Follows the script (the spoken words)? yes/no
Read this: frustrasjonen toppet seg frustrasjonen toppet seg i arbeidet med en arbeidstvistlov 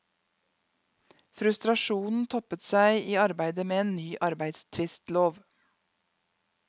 no